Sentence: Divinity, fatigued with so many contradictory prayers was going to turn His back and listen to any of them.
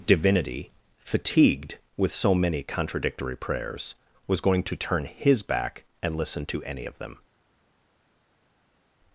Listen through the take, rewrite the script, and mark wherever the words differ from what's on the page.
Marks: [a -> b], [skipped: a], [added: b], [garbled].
Divinity, fatigued with so many contradictory prayers was going to turn His back and listen to any of them.